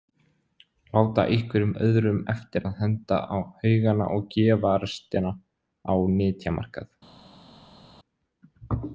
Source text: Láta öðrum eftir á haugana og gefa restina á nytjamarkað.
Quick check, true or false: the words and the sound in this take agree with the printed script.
false